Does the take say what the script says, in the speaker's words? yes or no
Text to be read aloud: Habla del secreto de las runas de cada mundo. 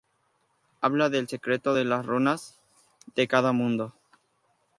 yes